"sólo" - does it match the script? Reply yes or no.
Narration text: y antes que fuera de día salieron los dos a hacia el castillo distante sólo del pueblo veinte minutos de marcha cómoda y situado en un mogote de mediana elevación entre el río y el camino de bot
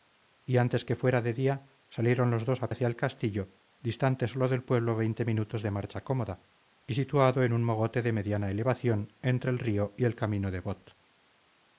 yes